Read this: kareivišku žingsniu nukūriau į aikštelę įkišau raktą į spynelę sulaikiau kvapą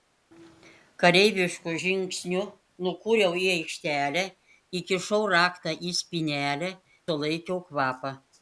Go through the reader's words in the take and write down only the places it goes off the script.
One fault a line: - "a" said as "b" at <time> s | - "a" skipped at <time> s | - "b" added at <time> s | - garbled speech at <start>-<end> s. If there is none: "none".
none